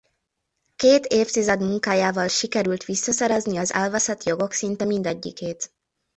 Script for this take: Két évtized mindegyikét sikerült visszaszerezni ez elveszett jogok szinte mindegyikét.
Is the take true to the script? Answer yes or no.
no